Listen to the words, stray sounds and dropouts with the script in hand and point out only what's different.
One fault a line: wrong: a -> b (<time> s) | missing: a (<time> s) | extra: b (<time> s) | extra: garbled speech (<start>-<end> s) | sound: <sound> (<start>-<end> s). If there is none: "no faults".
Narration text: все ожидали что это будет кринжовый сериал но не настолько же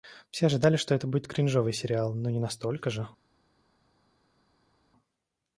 no faults